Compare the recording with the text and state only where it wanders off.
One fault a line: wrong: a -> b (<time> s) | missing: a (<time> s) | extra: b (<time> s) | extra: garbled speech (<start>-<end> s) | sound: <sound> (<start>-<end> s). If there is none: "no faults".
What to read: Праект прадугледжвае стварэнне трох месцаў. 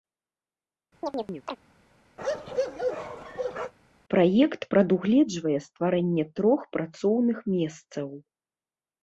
sound: chirp (1.0-1.6 s)
sound: bark (2.2-3.7 s)
extra: працоўных (6.8 s)